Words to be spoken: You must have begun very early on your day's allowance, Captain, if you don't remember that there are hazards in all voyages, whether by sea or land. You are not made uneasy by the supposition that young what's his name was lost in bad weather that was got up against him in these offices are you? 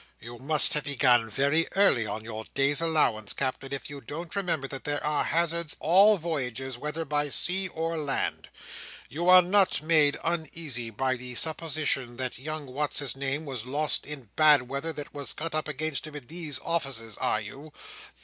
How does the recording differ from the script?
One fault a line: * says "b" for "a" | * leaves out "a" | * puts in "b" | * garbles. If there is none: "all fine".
* leaves out "in"